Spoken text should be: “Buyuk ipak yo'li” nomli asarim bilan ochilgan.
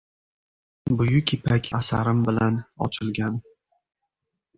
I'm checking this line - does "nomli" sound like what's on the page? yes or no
no